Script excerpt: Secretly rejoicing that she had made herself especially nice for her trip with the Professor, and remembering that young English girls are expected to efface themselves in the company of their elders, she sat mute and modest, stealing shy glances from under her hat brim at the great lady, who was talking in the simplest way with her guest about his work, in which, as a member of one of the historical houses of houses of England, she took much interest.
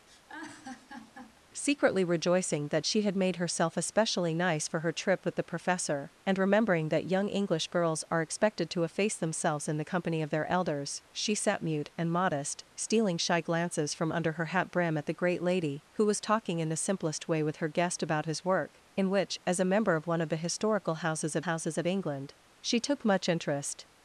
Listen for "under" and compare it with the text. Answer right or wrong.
right